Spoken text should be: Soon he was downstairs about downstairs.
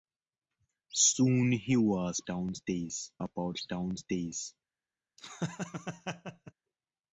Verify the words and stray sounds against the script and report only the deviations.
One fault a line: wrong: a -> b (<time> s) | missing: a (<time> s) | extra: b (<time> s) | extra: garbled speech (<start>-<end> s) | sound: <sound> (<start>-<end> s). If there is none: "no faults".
sound: laugh (5.2-6.5 s)